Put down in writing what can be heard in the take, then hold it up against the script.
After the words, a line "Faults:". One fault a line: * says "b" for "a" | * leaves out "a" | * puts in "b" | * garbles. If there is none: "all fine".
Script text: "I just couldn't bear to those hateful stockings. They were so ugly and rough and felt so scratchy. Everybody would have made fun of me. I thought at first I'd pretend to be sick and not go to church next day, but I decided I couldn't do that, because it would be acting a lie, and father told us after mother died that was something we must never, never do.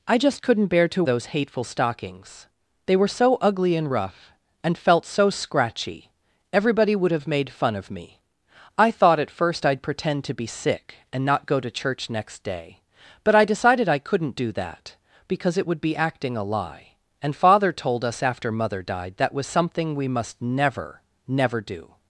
"I just couldn't bear to those hateful stockings. They were so ugly and rough and felt so scratchy. Everybody would have made fun of me. I thought at first I'd pretend to be sick and not go to church next day, but I decided I couldn't do that, because it would be acting a lie, and father told us after mother died that was something we must never, never do.
Faults:
all fine